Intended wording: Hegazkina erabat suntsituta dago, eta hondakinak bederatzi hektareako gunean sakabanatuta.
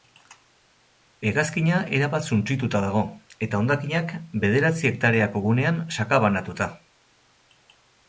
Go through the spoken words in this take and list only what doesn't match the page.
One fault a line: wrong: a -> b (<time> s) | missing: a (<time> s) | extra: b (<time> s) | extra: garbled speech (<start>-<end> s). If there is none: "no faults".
no faults